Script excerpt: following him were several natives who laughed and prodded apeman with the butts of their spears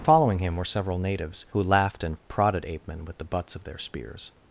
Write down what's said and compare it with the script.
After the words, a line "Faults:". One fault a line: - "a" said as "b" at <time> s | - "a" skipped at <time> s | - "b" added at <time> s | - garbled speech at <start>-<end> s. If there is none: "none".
following him were several natives who laughed and prodded apeman with the butts of their spears
Faults:
none